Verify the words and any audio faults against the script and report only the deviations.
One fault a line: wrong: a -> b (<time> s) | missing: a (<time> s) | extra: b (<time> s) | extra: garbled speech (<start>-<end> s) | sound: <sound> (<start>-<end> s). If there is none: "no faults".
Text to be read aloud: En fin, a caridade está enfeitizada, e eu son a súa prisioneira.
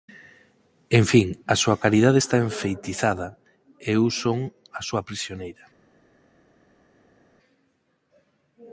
extra: súa (1.6 s)